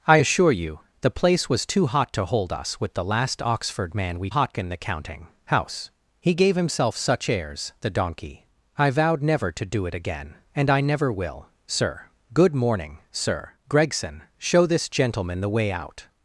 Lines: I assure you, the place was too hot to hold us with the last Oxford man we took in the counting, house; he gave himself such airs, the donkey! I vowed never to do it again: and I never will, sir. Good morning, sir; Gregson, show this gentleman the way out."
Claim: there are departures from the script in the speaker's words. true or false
true